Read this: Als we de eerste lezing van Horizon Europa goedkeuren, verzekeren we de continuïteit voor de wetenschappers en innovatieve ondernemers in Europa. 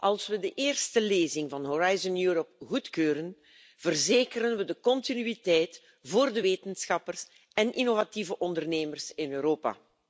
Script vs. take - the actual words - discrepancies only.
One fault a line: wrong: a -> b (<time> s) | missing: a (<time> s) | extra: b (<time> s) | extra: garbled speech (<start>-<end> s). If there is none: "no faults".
no faults